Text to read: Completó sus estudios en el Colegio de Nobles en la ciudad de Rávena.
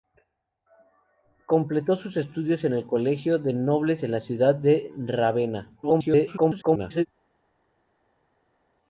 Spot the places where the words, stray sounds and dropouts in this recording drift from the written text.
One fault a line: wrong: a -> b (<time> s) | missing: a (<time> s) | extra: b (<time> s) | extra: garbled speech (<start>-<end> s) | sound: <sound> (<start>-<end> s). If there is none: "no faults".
extra: garbled speech (5.8-7.1 s)